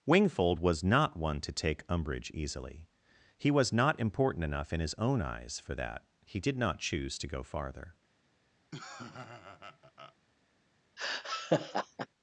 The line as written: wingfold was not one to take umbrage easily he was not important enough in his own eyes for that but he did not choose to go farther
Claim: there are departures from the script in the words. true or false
true